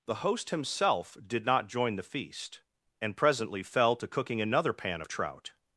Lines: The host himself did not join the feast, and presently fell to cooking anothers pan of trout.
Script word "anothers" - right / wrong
wrong